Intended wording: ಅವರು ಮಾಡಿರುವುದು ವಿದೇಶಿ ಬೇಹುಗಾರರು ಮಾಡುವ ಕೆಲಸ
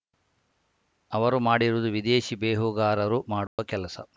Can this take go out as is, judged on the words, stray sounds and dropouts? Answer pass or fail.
fail